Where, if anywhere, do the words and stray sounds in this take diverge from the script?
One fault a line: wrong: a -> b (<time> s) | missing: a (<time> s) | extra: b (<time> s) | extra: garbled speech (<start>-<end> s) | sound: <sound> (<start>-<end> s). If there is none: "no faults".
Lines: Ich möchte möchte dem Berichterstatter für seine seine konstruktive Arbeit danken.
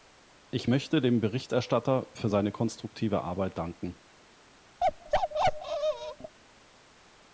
missing: möchte (1.0 s)
missing: seine (2.5 s)
sound: bark (4.8-6.4 s)